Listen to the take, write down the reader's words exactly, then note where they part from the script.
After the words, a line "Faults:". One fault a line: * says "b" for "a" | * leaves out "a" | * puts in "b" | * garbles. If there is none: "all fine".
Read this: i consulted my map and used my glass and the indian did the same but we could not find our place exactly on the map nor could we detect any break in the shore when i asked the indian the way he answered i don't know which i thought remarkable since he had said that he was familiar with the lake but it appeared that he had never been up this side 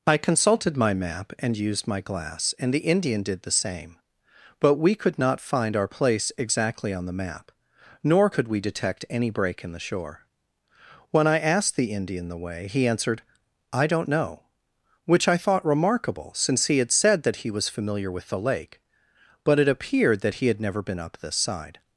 i consulted my map and used my glass and the indian did the same but we could not find our place exactly on the map nor could we detect any break in the shore when i asked the indian the way he answered i don't know which i thought remarkable since he had said that he was familiar with the lake but it appeared that he had never been up this side
Faults:
all fine